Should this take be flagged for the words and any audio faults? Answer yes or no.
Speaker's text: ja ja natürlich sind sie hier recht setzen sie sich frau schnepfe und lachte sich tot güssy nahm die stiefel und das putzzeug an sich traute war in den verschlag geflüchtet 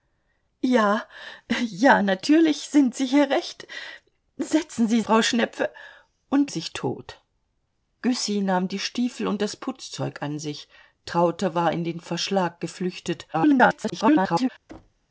yes